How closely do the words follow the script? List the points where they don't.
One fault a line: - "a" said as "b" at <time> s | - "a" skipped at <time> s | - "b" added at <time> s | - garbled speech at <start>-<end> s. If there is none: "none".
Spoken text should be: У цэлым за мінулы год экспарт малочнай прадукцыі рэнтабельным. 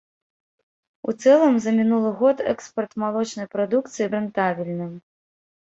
none